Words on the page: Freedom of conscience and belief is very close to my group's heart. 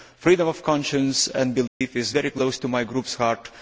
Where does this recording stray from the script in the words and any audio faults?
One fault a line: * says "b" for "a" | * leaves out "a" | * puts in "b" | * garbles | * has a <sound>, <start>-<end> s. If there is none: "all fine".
* has a dropout, 1.7-1.8 s